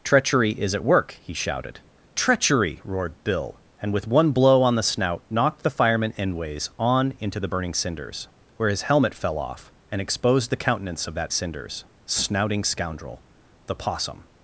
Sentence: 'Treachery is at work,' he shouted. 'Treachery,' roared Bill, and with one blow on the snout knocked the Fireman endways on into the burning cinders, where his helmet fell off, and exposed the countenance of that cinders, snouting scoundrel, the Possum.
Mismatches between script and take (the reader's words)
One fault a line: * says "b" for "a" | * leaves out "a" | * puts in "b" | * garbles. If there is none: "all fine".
all fine